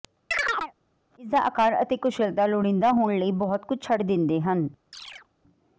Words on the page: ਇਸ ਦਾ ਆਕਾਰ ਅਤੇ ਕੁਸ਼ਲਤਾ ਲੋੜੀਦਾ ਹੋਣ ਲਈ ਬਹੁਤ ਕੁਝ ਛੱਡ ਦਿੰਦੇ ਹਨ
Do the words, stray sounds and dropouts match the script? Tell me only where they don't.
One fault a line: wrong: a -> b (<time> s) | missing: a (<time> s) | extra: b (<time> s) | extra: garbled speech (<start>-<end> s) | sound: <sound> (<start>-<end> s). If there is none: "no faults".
sound: chirp (0.3-0.7 s)
sound: chirp (4.9-5.3 s)